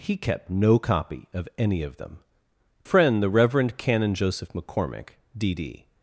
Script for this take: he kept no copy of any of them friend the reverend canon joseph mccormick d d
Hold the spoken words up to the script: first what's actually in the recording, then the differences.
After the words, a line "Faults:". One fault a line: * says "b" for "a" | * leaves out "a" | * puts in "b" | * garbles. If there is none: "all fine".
he kept no copy of any of them friend the reverend canon joseph mccormick d d
Faults:
all fine